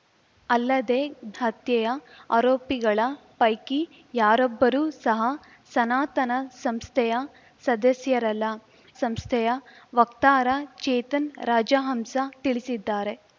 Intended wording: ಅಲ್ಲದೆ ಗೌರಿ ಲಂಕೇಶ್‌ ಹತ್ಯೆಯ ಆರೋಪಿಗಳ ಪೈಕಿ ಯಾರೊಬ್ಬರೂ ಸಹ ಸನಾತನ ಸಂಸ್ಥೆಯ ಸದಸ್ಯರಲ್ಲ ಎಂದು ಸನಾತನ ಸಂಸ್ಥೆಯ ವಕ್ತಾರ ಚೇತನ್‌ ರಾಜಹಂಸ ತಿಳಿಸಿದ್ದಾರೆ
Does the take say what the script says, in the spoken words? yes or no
no